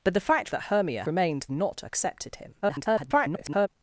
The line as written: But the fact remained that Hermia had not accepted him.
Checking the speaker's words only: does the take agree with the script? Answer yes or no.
no